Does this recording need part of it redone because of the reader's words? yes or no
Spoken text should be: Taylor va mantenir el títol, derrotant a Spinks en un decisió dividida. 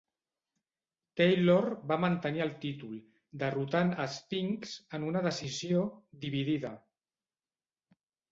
yes